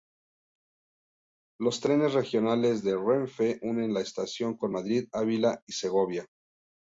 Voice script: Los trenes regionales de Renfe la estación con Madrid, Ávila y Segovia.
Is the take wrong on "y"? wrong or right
right